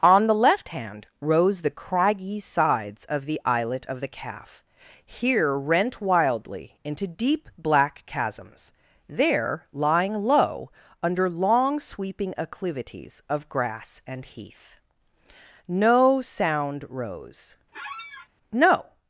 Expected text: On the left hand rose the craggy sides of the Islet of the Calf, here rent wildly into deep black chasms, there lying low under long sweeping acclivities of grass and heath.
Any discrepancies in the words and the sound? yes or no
yes